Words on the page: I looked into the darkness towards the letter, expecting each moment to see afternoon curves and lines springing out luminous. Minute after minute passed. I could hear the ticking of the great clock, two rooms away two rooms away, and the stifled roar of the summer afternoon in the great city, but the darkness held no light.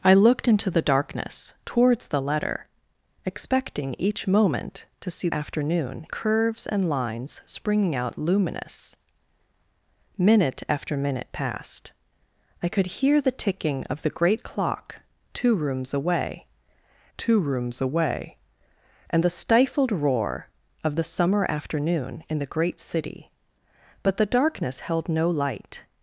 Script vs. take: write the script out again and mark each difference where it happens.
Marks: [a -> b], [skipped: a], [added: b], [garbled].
I looked into the darkness towards the letter, expecting each moment to see afternoon curves and lines springing out luminous. Minute after minute passed. I could hear the ticking of the great clock, two rooms away two rooms away, and the stifled roar of the summer afternoon in the great city, but the darkness held no light.